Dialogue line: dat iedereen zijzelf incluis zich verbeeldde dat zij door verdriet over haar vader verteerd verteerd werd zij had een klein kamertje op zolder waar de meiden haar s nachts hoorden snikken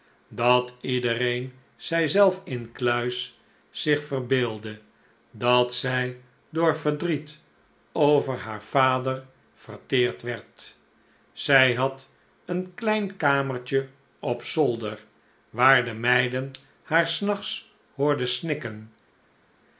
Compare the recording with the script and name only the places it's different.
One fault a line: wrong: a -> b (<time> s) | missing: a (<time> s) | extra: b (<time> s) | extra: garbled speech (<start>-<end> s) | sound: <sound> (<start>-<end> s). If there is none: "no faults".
missing: verteerd (10.2 s)